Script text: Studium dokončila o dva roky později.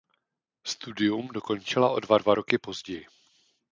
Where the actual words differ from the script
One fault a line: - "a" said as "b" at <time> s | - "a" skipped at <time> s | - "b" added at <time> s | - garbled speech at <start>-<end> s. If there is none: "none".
- "dva" added at 2.2 s